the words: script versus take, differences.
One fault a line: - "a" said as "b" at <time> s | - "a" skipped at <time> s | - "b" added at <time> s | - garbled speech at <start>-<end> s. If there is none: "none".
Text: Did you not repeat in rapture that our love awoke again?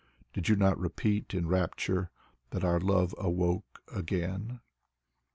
none